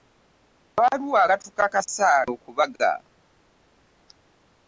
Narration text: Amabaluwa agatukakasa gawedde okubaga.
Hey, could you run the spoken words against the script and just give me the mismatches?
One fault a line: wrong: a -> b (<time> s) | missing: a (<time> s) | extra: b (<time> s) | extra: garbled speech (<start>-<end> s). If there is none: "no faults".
missing: gawedde (2.1 s)